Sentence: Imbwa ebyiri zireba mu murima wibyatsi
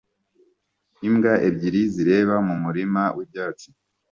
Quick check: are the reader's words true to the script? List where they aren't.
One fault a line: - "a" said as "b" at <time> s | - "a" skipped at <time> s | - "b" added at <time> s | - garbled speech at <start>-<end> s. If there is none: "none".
none